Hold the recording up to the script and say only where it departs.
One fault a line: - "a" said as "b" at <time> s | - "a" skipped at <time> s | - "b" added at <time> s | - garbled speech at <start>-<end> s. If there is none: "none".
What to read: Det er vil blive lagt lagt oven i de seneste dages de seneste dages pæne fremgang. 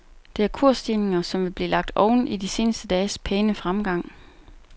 - "kursstigninger som" added at 0.5 s
- "lagt" skipped at 1.9 s
- "de seneste dages" skipped at 3.2 s